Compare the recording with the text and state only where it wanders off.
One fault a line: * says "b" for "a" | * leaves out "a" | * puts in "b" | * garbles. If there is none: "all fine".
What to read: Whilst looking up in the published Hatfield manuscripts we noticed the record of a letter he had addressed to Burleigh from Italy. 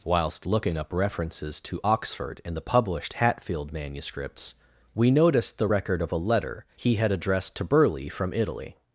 * puts in "references to Oxford"